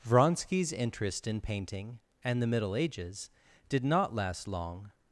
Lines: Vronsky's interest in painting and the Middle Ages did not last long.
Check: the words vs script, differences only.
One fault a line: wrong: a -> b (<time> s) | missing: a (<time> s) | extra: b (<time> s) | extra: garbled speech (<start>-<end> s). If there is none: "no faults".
no faults